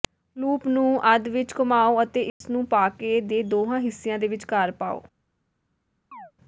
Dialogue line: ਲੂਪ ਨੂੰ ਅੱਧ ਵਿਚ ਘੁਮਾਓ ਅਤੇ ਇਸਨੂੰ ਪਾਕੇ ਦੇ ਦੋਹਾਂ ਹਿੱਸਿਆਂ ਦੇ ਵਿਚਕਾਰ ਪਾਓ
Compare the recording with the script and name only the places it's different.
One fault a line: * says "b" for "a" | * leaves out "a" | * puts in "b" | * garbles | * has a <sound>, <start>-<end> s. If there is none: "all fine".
* has a dropout, 2.3-2.4 s
* has a chirp, 6.1-6.3 s